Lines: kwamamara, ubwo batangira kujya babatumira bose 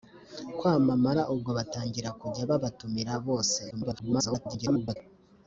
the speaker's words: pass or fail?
fail